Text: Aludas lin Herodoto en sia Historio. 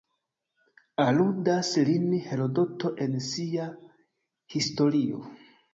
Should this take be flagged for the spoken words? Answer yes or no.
no